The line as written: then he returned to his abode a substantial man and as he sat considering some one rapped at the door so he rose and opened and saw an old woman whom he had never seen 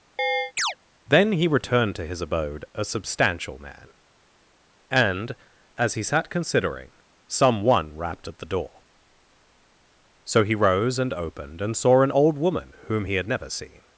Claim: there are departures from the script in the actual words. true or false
false